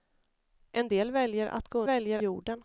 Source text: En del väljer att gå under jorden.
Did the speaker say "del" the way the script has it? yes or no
yes